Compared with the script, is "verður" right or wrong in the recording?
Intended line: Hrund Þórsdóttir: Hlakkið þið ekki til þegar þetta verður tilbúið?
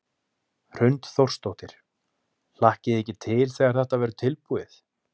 right